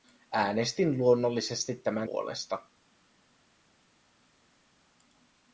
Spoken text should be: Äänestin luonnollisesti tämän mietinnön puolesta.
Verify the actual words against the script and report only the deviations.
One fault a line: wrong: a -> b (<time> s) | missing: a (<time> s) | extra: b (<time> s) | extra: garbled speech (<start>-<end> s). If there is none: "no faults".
missing: mietinnön (2.1 s)